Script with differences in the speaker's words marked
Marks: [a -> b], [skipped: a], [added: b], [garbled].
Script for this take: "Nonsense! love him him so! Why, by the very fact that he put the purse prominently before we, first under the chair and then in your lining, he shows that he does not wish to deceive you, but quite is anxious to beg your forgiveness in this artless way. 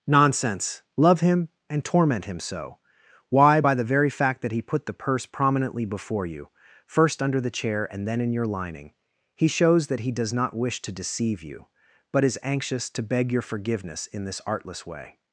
"Nonsense! love him [added: and torment] him so! Why, by the very fact that he put the purse prominently before [we, -> you] first under the chair and then in your lining, he shows that he does not wish to deceive you, but [skipped: quite] is anxious to beg your forgiveness in this artless way.